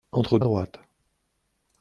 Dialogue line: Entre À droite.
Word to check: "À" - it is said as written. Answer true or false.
true